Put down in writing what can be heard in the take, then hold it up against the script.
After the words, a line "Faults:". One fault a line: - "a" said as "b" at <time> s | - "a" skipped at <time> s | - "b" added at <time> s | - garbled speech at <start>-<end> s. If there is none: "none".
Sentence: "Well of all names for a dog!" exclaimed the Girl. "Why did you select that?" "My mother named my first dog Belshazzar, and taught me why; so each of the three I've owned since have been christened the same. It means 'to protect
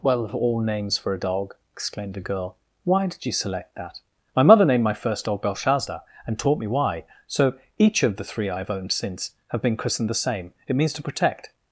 "Well of all names for a dog!" exclaimed the Girl. "Why did you select that?" "My mother named my first dog Belshazzar, and taught me why; so each of the three I've owned since have been christened the same. It means 'to protect
Faults:
none